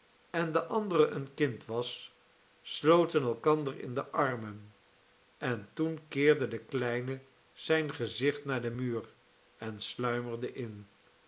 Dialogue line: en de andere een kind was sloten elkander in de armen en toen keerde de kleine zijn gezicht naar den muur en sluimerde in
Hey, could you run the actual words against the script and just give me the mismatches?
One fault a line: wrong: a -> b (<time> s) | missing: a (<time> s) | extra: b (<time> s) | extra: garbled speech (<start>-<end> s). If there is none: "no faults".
no faults